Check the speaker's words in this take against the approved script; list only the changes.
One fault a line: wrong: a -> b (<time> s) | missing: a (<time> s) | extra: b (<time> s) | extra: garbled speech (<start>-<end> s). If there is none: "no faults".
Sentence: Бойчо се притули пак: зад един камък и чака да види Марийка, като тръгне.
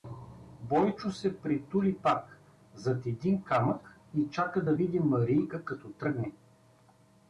no faults